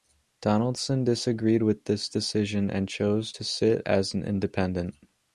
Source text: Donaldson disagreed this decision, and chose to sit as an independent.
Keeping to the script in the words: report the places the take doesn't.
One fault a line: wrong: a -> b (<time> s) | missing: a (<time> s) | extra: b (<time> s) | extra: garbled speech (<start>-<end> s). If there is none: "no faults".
extra: with (1.6 s)